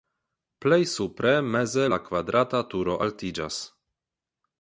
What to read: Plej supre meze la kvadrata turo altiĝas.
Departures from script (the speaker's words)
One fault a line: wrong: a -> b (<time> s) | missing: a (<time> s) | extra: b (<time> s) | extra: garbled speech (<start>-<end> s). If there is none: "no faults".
no faults